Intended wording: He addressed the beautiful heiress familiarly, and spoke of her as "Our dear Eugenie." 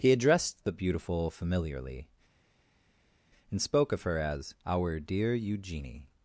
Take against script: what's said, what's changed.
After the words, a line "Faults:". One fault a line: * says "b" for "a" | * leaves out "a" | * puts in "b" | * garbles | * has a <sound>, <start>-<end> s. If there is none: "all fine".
He addressed the beautiful familiarly, and spoke of her as "Our dear Eugenie."
Faults:
* leaves out "heiress"